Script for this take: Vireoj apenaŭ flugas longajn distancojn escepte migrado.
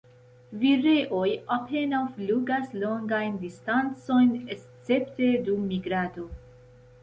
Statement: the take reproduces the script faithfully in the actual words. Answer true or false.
false